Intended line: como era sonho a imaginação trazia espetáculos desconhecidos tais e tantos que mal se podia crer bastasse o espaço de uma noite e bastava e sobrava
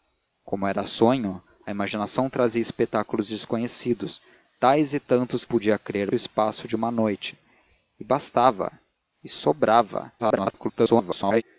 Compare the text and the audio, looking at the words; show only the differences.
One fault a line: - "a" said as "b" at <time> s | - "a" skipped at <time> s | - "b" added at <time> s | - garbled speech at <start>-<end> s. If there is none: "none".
- "que mal se" skipped at 5.4 s
- "bastasse" skipped at 6.1 s
- garbled speech at 10.2-11.4 s